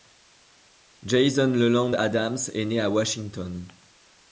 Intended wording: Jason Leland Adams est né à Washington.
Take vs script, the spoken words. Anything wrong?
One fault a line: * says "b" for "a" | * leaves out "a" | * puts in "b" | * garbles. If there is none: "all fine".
all fine